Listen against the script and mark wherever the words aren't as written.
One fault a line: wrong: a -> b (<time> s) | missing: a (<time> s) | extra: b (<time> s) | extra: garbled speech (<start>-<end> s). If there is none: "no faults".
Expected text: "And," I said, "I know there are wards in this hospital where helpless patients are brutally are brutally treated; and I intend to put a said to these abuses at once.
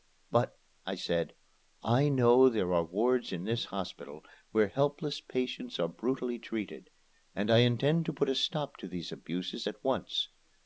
wrong: And -> But (0.3 s)
missing: are brutally (6.4 s)
wrong: said -> stop (8.3 s)